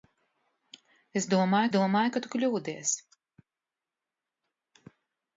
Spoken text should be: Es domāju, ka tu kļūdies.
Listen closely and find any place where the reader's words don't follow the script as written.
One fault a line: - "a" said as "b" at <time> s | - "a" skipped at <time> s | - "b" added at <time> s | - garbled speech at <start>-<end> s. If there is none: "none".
- "domāju" added at 1.8 s